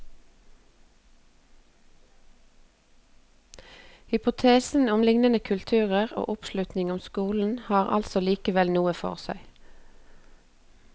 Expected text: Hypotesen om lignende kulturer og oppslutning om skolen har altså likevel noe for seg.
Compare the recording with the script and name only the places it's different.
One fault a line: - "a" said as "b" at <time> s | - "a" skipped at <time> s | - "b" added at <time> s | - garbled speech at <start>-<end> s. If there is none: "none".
none